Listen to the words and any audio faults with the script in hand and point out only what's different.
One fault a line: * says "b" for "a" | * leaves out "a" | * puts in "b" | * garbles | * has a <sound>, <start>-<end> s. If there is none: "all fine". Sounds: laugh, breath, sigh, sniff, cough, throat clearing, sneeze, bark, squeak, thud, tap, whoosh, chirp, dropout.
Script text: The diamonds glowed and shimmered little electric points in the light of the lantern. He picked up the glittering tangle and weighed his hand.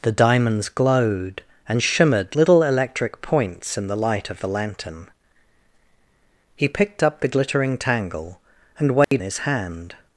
* has a dropout, 9.0-9.1 s